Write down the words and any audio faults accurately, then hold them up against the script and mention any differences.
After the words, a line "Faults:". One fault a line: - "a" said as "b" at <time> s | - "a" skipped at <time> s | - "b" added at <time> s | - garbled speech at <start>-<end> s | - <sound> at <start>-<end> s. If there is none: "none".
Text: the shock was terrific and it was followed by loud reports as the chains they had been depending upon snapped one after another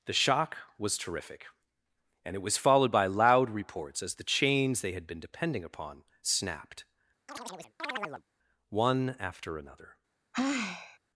the shock was terrific and it was followed by loud reports as the chains they had been depending upon snapped one after another
Faults:
- chirp at 7.3-8.2 s
- sigh at 10.3-11.0 s